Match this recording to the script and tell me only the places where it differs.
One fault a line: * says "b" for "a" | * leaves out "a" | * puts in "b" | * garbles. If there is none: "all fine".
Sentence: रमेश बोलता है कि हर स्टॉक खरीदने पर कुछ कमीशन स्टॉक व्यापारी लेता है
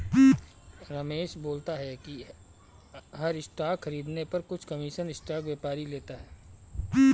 all fine